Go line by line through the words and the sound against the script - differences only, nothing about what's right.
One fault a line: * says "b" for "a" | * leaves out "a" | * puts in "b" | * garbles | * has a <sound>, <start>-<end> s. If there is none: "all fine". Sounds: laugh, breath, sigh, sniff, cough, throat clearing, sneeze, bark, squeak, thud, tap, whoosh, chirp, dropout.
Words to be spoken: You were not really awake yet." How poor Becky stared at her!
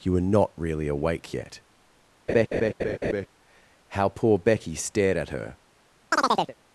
* has a laugh, 2.3-3.3 s
* has a chirp, 6.1-6.6 s